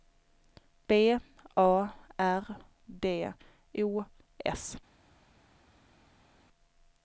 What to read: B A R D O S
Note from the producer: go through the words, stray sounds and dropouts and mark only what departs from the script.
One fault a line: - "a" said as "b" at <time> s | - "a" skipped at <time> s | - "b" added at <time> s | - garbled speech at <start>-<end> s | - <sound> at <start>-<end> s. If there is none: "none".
none